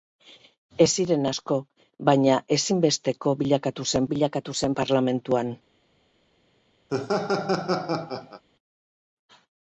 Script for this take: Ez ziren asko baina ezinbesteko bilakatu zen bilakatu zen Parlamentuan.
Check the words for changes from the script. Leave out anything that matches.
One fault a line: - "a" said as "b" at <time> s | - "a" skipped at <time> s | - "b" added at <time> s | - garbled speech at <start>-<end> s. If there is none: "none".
none